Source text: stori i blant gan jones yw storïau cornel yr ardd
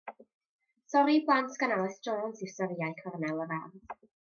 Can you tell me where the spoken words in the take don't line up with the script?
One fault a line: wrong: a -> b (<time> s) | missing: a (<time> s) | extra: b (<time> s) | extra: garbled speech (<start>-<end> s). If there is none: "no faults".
extra: alys (1.8 s)